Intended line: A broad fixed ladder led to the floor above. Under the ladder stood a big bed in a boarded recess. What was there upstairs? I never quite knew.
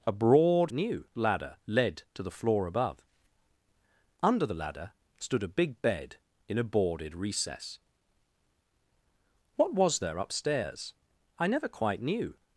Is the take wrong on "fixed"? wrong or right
wrong